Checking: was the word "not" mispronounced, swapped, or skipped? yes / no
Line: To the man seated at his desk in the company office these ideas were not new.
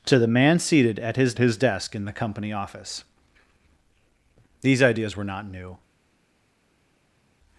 no